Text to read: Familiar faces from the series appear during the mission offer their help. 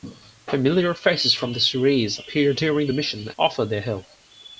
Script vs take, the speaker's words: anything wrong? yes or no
no